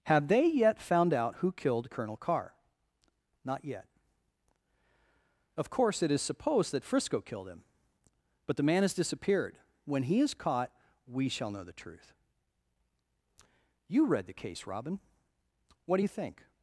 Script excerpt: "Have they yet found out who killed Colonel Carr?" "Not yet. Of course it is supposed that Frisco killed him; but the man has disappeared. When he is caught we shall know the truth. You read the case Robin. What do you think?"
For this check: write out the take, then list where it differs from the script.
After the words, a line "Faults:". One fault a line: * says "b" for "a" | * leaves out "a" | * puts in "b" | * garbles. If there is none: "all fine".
"Have they yet found out who killed Colonel Carr?" "Not yet. Of course it is supposed that Frisco killed him; but the man has disappeared. When he is caught we shall know the truth. You read the case Robin. What do you think?"
Faults:
all fine